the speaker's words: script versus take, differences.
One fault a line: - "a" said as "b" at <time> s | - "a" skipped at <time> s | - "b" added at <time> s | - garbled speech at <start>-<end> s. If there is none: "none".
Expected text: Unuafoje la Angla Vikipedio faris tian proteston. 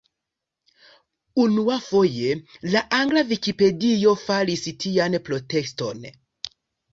none